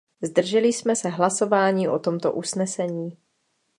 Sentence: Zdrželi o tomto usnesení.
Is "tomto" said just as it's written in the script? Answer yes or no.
yes